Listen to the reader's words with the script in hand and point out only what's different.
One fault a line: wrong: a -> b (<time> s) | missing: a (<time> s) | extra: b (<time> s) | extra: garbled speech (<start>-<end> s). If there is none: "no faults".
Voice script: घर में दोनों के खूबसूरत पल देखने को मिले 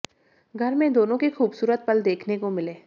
no faults